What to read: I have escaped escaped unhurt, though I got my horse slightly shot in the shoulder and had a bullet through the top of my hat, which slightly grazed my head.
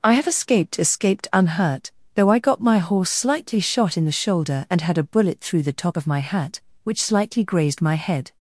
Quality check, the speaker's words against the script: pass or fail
pass